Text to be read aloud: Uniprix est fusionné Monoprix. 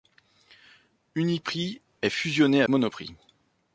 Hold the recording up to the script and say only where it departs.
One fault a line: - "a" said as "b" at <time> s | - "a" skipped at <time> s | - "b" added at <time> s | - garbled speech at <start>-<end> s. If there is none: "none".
none